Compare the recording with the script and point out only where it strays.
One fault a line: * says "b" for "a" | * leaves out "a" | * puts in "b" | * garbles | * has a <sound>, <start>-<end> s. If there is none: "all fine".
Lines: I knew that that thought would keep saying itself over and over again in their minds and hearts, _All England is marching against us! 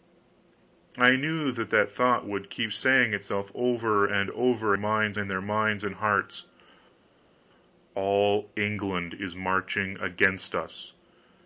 * says "minds" for "again"